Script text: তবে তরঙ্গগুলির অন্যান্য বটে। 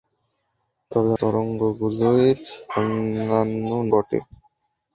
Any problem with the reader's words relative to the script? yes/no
no